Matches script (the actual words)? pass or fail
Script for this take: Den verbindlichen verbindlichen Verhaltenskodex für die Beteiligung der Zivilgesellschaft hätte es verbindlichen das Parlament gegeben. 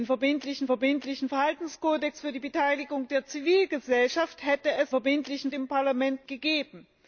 pass